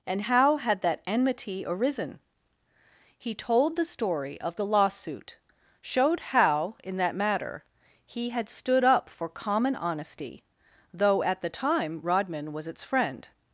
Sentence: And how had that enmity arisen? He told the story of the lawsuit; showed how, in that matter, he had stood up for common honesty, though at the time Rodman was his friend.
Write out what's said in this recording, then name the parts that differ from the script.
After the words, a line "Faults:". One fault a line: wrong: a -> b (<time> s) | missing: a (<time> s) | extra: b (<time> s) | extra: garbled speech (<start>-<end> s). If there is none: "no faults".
And how had that enmity arisen? He told the story of the lawsuit; showed how, in that matter, he had stood up for common honesty, though at the time Rodman was its friend.
Faults:
wrong: his -> its (12.7 s)